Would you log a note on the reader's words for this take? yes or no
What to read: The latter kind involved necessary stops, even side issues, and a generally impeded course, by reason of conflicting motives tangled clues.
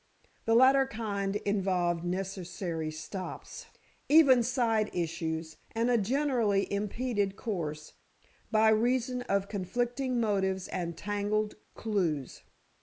yes